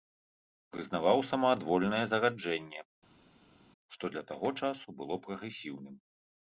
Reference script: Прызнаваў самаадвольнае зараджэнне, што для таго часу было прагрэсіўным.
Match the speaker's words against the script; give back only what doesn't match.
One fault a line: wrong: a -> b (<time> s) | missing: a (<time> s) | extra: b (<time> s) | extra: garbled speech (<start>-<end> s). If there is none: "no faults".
no faults